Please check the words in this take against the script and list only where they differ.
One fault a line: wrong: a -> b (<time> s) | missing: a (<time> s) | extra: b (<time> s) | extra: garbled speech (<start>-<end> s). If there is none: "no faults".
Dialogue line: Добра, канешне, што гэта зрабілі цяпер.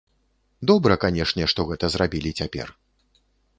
no faults